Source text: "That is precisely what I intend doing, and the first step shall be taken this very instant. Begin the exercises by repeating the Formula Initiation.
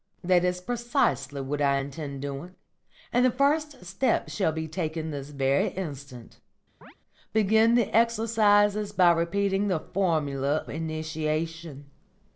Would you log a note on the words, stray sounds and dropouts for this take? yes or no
yes